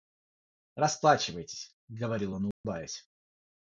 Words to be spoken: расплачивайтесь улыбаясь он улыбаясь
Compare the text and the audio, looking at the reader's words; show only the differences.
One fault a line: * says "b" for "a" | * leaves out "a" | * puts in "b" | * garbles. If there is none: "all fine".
* says "говорил" for "улыбаясь"